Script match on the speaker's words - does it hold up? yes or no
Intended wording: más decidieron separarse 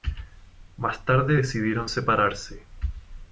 no